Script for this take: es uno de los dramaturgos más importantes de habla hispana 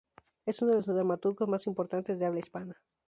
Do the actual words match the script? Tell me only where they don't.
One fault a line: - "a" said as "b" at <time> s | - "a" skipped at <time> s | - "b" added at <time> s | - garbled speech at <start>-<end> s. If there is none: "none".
none